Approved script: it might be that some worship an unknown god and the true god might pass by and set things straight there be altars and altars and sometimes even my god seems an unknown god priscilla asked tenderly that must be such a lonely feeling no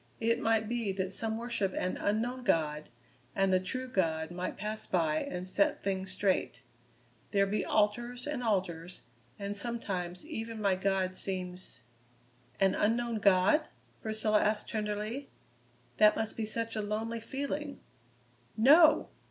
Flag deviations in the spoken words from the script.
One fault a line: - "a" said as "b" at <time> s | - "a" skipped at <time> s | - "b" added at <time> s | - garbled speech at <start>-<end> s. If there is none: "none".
none